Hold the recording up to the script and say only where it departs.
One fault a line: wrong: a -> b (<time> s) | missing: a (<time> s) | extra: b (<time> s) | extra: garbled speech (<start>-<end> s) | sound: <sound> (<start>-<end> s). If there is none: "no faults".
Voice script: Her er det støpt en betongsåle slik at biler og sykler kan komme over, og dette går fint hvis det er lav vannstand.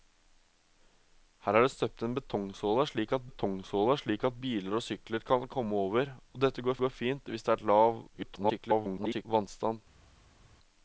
extra: betongsåle slik at (3.3 s)
extra: går (6.8 s)
extra: garbled speech (8.1-9.3 s)